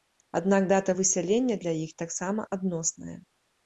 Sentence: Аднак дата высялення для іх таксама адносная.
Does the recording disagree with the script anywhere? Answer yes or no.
no